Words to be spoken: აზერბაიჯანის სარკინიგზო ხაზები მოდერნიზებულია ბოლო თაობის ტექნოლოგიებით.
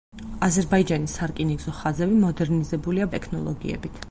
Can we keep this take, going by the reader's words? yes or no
no